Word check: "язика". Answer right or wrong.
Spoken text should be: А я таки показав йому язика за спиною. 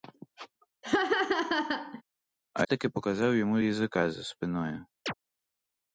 right